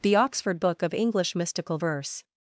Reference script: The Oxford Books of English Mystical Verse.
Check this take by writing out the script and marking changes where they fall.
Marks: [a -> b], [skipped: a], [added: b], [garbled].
The Oxford [Books -> Book] of English Mystical Verse.